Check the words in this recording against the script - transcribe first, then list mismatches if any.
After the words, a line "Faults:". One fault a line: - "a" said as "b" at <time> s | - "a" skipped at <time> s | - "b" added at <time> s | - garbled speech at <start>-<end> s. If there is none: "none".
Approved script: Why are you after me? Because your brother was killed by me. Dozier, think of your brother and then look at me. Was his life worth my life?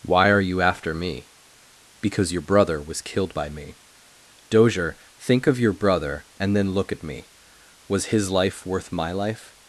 Why are you after me? Because your brother was killed by me. Dozier, think of your brother and then look at me. Was his life worth my life?
Faults:
none